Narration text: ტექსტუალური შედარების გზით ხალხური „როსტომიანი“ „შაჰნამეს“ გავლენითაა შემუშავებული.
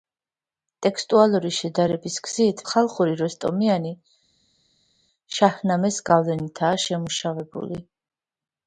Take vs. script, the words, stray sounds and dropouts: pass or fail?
pass